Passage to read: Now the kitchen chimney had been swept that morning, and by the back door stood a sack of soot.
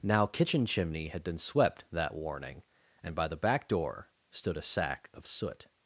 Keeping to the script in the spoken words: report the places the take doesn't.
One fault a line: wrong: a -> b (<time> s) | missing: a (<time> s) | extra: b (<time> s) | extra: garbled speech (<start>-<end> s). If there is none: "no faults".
missing: the (0.2 s)
wrong: morning -> warning (2.1 s)